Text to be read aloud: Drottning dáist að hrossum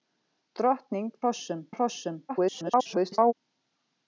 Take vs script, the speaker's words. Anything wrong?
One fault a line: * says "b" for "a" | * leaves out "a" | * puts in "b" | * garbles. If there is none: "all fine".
* says "hrossum" for "dáist"
* garbles